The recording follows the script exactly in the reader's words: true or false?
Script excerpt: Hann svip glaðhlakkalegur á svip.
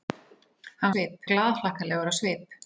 true